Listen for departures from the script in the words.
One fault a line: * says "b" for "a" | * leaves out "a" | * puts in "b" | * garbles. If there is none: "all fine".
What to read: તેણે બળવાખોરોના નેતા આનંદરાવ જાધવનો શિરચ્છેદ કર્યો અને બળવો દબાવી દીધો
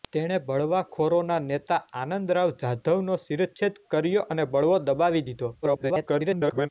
* garbles